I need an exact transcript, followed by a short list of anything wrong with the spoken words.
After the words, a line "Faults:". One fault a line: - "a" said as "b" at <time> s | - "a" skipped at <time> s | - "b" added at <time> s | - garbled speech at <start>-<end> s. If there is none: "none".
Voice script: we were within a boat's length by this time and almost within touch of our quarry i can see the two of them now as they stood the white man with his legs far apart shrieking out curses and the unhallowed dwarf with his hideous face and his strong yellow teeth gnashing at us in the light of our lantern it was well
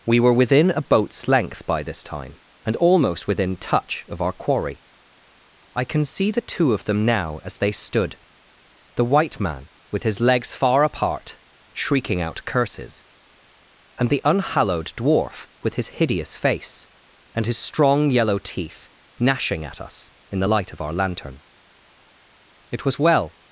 we were within a boat's length by this time and almost within touch of our quarry i can see the two of them now as they stood the white man with his legs far apart shrieking out curses and the unhallowed dwarf with his hideous face and his strong yellow teeth gnashing at us in the light of our lantern it was well
Faults:
none